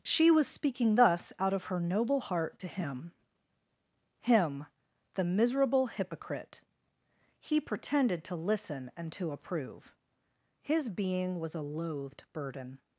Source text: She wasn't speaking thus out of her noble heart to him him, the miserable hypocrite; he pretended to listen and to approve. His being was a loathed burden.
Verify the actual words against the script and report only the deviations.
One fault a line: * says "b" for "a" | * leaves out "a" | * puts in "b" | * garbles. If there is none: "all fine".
* says "was" for "wasn't"